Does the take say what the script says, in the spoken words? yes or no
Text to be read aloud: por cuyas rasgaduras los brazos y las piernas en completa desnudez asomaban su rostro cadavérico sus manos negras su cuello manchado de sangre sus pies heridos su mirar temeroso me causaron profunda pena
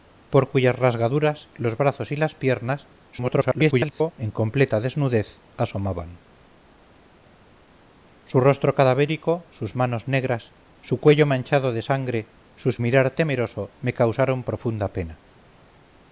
no